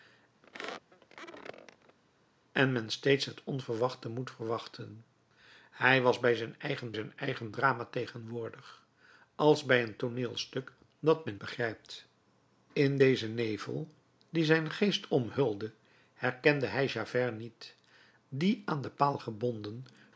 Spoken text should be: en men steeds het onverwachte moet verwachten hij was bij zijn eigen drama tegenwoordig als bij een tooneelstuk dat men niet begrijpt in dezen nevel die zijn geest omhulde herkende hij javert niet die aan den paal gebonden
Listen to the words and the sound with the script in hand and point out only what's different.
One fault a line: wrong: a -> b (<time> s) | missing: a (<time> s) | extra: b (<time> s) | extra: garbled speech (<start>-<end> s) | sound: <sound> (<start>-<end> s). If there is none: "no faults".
sound: squeak (0.4-2.0 s)
extra: zijn eigen (6.9 s)
missing: niet (11.4 s)